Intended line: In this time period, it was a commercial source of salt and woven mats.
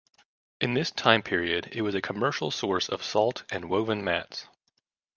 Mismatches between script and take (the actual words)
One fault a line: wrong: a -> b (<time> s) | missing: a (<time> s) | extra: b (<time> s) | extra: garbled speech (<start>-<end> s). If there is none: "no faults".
no faults